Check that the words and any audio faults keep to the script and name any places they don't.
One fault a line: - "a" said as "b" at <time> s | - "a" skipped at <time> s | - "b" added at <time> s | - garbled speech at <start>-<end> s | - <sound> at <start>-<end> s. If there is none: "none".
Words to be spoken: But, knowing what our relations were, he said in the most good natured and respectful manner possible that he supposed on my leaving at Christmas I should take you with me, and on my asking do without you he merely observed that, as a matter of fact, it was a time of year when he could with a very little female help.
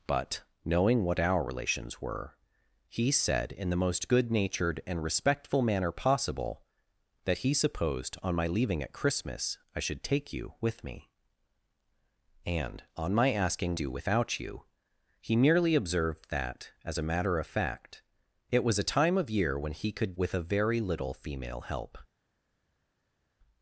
none